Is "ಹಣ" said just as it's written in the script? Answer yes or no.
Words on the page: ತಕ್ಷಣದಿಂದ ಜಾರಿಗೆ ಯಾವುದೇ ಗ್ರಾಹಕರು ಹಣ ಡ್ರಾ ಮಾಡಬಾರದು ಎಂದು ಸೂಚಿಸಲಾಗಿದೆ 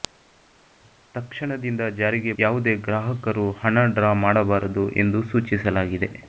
yes